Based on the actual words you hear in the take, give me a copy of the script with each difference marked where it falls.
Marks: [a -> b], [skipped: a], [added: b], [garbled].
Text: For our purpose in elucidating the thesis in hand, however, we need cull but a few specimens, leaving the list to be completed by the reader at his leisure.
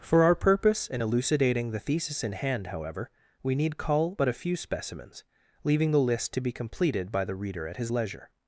For our purpose in elucidating the thesis in hand, however, we need cull but a few specimens, leaving the list to be completed by the reader at his leisure.